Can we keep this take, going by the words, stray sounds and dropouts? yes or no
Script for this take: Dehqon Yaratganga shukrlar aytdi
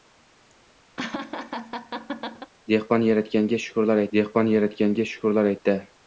no